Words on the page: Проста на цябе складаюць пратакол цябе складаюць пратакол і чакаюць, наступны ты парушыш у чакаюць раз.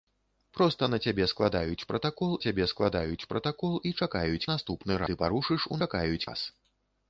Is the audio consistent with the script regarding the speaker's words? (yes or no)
yes